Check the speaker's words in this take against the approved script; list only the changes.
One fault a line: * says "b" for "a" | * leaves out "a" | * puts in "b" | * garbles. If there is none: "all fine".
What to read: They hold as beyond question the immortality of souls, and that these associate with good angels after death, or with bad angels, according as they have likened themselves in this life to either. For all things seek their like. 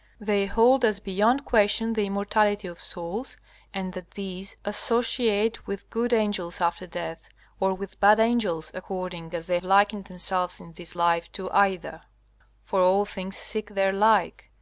* leaves out "have"